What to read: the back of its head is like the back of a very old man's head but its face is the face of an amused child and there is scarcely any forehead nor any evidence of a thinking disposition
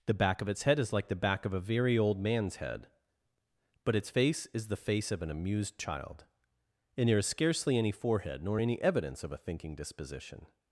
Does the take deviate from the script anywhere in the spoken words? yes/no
no